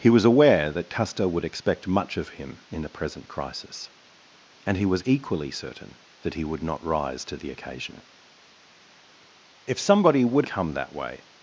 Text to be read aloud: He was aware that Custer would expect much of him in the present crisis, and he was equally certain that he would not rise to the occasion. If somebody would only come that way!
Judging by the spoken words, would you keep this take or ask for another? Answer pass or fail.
fail